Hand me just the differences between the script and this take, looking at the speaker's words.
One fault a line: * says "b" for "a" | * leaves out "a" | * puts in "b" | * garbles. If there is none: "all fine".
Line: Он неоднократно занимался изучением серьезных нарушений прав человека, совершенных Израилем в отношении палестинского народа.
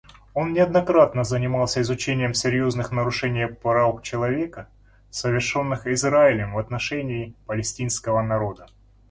all fine